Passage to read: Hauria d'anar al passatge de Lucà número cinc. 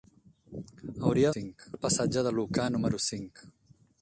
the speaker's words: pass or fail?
fail